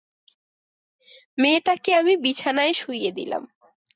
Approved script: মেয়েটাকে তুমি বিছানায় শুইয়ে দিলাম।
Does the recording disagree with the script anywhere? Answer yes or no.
yes